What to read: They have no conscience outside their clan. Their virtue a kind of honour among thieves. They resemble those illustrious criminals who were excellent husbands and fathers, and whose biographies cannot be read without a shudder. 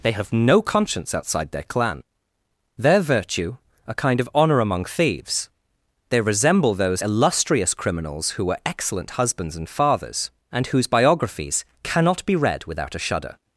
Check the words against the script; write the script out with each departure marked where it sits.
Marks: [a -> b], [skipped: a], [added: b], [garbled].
They have no conscience outside their clan. Their virtue a kind of honour among thieves. They resemble those illustrious criminals who were excellent husbands and fathers, and whose biographies cannot be read without a shudder.